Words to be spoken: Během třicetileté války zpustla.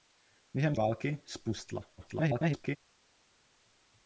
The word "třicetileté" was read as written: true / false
false